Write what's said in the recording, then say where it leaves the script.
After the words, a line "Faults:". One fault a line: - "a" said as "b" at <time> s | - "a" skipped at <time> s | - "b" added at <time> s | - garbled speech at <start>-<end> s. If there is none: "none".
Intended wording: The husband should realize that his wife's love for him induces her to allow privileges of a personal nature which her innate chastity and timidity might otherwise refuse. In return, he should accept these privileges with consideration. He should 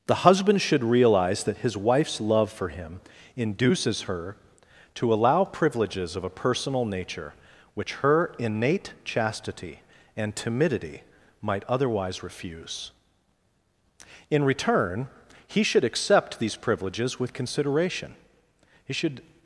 The husband should realize that his wife's love for him induces her to allow privileges of a personal nature which her innate chastity and timidity might otherwise refuse. In return, he should accept these privileges with consideration. He should
Faults:
none